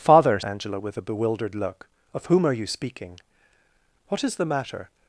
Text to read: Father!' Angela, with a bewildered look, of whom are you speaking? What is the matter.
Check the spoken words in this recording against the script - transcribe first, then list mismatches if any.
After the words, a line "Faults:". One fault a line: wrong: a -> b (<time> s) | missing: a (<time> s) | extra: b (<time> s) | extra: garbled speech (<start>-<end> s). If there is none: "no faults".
Father!' Angela, with a bewildered look, of whom are you speaking? What is the matter.
Faults:
no faults